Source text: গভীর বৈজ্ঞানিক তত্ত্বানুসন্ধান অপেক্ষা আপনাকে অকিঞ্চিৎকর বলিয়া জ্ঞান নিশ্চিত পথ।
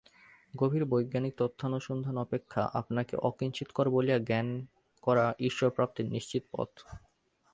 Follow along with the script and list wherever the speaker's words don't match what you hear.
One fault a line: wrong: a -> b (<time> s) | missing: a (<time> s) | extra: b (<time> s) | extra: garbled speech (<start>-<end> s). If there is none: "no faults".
extra: করা ঈশ্বরপ্রাপ্তির (5.0 s)